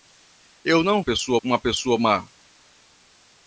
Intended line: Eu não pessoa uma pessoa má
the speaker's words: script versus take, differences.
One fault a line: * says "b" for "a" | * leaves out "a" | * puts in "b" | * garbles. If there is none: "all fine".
all fine